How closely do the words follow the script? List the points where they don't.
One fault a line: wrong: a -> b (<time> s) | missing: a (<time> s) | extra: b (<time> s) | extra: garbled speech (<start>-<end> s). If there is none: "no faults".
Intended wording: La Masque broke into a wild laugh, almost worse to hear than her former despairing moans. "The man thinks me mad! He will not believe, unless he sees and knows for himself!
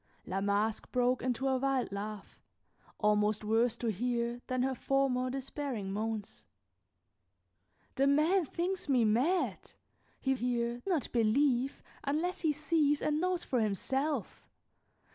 wrong: will -> hear (10.3 s)